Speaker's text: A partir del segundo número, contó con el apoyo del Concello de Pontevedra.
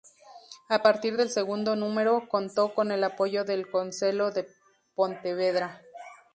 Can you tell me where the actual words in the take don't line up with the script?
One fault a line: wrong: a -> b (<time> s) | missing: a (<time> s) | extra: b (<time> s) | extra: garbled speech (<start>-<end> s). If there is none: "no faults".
no faults